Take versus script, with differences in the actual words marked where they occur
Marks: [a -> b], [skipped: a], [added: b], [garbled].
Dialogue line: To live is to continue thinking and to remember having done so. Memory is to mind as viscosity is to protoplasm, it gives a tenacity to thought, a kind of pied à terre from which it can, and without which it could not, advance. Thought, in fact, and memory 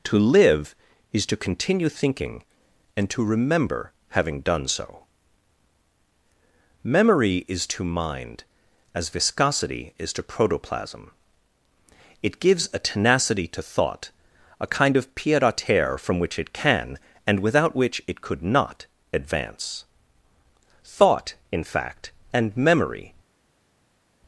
To live is to continue thinking and to remember having done so. Memory is to mind as viscosity is to protoplasm, it gives a tenacity to thought, a kind of pied à terre from which it can, and without which it could not, advance. Thought, in fact, and memory